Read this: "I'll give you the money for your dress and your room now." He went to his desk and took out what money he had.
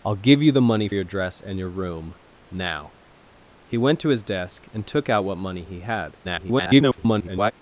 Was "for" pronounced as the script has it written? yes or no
no